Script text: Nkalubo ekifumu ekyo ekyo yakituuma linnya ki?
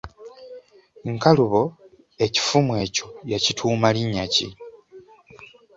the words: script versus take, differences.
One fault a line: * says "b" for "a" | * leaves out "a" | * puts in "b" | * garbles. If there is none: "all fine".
* leaves out "ekyo"